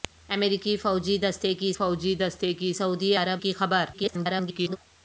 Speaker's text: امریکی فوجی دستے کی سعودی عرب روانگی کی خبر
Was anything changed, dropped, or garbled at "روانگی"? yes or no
yes